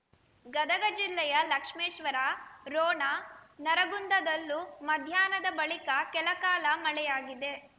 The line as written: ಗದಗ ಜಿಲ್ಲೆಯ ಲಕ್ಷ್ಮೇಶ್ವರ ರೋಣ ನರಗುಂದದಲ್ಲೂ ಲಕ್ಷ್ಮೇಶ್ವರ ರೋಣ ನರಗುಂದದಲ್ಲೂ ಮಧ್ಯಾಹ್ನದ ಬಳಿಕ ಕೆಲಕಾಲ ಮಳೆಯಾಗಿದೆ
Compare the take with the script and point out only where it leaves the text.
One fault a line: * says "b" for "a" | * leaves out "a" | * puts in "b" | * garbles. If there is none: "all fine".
* leaves out "ಲಕ್ಷ್ಮೇಶ್ವರ ರೋಣ ನರಗುಂದದಲ್ಲೂ"